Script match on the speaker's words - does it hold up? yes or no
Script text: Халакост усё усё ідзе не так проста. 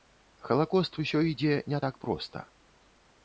no